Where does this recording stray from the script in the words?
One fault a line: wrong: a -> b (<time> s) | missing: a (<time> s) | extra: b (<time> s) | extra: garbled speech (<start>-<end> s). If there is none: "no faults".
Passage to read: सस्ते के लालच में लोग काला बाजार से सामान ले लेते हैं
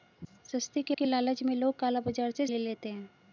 extra: के (0.9 s)
missing: सामान (2.5 s)